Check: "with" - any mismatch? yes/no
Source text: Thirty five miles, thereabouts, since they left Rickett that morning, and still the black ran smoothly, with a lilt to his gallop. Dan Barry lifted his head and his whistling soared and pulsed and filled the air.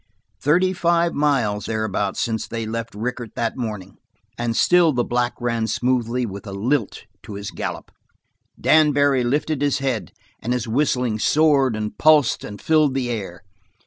no